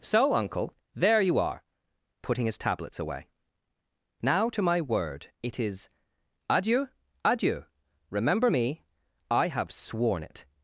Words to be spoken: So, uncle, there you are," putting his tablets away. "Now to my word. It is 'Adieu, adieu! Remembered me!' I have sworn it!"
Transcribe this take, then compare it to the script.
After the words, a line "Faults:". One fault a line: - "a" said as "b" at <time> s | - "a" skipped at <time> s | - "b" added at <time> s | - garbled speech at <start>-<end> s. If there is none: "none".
So, uncle, there you are," putting his tablets away. "Now to my word. It is 'Adieu, adieu! Remember me!' I have sworn it!"
Faults:
- "Remembered" said as "Remember" at 8.1 s